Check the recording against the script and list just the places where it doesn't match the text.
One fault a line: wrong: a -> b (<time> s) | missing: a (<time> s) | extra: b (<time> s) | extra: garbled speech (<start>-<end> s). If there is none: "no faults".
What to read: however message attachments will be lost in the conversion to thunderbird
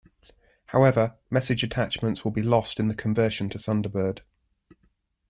no faults